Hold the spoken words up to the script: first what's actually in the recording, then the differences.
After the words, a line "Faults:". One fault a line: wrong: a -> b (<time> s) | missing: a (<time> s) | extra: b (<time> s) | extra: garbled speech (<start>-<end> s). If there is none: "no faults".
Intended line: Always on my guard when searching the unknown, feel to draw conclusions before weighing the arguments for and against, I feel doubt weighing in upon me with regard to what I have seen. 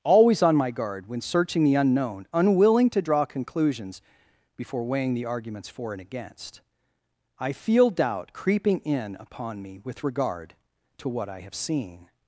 Always on my guard when searching the unknown, unwilling to draw conclusions before weighing the arguments for and against, I feel doubt creeping in upon me with regard to what I have seen.
Faults:
wrong: feel -> unwilling (2.3 s)
wrong: weighing -> creeping (8.3 s)